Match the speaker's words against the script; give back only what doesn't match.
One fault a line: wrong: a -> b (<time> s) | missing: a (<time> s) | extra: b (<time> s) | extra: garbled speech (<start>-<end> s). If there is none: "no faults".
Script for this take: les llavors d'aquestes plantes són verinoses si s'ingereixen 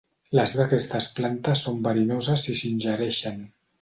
missing: llavors (0.5 s)